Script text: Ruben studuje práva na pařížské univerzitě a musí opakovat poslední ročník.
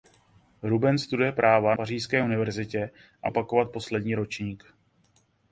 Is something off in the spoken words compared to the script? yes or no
yes